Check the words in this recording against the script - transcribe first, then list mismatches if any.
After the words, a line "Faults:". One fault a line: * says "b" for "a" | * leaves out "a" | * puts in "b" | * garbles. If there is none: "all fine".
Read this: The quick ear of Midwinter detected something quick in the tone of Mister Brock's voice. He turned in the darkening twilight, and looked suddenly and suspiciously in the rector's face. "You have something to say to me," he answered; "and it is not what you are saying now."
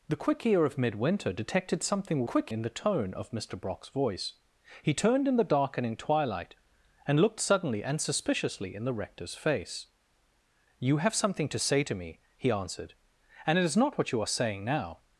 The quick ear of Midwinter detected something quick in the tone of Mister Brock's voice. He turned in the darkening twilight, and looked suddenly and suspiciously in the rector's face. "You have something to say to me," he answered; "and it is not what you are saying now."
Faults:
all fine